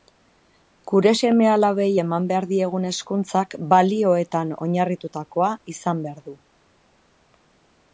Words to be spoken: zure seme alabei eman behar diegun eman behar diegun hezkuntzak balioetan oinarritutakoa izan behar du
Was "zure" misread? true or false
true